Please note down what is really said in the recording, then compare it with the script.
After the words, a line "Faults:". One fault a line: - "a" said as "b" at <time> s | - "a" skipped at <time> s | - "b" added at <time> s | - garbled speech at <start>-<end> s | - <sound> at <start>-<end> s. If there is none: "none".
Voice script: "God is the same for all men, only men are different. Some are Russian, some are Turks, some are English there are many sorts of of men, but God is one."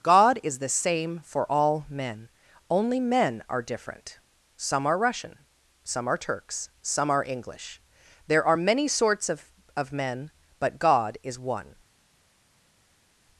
"God is the same for all men, only men are different. Some are Russian, some are Turks, some are English there are many sorts of of men, but God is one."
Faults:
none